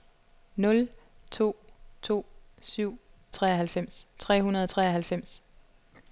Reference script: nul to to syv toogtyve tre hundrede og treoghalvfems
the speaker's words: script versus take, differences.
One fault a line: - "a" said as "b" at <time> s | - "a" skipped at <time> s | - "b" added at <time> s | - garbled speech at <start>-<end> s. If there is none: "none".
- "toogtyve" said as "treoghalvfems" at 3.3 s